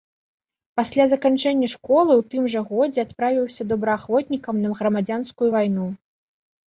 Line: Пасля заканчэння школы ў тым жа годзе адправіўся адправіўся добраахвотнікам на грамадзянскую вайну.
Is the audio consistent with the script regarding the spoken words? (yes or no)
no